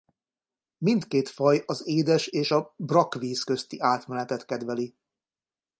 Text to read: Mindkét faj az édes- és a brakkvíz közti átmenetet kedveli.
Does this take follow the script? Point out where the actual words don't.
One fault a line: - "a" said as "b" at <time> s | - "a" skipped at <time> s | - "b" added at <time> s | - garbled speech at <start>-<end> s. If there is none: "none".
none